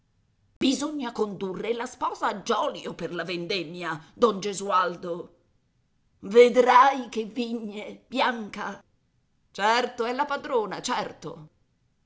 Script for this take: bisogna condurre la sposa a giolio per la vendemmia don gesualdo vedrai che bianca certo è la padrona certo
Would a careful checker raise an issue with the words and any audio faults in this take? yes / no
yes